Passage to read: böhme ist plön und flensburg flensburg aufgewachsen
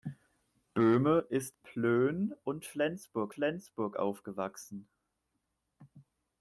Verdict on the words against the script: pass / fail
pass